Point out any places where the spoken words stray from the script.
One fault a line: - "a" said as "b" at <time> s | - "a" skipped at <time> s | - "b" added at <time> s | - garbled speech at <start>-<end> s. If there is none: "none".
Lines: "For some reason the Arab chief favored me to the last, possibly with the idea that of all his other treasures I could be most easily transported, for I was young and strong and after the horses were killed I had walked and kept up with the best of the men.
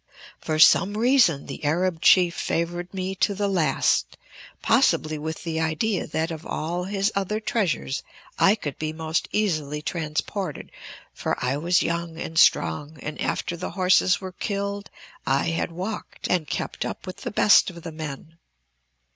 none